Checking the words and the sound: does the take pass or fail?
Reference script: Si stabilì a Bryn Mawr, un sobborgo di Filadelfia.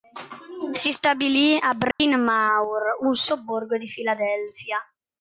fail